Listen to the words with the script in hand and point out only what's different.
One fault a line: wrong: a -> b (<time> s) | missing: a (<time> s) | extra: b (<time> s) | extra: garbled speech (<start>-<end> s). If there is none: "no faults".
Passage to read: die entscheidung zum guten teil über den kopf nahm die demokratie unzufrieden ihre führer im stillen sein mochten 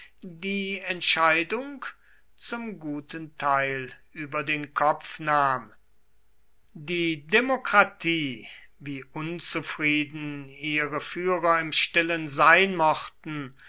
extra: wie (8.8 s)